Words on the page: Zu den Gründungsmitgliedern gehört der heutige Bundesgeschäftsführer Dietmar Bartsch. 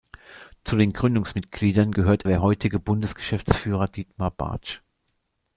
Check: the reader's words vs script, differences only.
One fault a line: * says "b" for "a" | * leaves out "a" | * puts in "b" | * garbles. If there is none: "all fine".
all fine